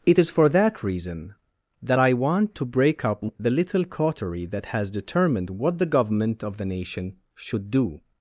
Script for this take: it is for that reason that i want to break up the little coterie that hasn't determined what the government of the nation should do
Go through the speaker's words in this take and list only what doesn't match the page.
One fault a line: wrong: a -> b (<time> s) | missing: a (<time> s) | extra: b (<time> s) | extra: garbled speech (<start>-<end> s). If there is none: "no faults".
wrong: hasn't -> has (4.7 s)